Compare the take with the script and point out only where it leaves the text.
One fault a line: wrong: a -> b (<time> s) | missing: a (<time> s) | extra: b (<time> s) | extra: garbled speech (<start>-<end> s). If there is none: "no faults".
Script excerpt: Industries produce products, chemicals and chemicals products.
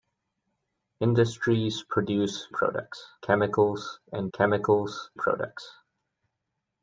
no faults